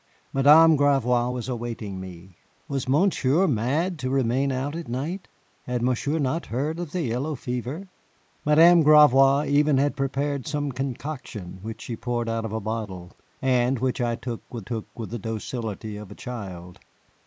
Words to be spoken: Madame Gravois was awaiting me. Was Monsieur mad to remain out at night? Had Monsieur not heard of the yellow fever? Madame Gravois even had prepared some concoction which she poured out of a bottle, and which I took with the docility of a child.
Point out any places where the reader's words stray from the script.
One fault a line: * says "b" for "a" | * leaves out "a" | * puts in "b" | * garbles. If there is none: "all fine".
* puts in "took with"